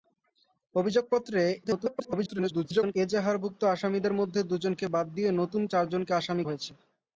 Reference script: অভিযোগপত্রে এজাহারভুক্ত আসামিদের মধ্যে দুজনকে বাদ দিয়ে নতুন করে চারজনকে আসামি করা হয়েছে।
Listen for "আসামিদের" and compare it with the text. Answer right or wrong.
right